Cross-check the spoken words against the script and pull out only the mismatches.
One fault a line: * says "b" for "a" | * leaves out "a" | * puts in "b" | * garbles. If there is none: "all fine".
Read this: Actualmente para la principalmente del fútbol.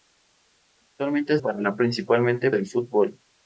all fine